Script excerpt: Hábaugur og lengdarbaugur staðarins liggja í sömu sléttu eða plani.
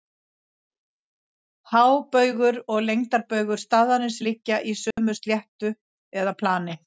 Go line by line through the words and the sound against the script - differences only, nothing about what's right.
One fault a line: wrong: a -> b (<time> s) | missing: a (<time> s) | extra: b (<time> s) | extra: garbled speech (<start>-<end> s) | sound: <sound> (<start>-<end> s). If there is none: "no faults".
sound: dropout (4.9-5.0 s)